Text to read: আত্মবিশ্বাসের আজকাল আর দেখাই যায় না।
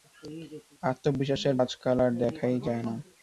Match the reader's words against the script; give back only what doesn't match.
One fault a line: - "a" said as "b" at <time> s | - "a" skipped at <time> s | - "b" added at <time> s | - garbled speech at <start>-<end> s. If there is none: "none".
none